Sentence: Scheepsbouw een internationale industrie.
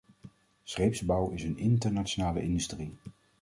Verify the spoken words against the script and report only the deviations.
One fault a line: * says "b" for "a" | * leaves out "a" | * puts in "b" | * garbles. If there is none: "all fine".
* puts in "is"